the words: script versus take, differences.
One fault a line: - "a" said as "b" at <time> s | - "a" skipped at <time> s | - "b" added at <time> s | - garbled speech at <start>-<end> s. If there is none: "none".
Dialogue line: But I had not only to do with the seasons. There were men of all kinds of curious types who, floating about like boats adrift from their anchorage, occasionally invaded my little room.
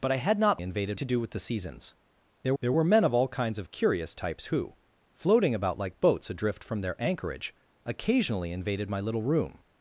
- "only" said as "invaded" at 0.6 s
- "there" added at 2.6 s